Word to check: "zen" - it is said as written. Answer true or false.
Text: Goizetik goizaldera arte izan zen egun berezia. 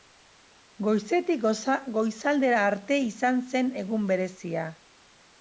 true